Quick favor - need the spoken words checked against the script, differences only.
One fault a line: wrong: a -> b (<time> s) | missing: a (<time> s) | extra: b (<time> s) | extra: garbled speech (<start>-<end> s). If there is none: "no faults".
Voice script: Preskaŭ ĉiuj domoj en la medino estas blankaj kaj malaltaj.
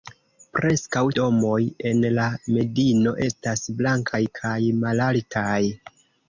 missing: ĉiuj (1.0 s)